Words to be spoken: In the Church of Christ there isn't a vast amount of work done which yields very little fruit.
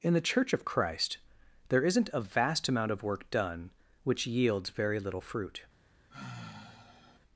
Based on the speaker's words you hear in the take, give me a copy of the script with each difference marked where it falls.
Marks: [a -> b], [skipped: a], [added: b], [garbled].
In the Church of Christ there isn't a vast amount of work done which yields very little fruit.